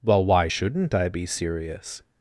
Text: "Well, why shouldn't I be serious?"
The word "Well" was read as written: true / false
true